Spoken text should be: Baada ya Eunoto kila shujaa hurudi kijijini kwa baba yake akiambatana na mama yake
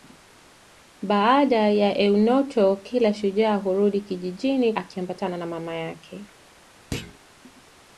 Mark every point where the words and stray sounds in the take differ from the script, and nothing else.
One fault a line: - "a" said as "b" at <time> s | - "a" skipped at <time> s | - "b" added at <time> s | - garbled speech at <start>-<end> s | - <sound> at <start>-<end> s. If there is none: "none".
- "kwa baba yake" skipped at 4.7 s
- thud at 6.9-7.2 s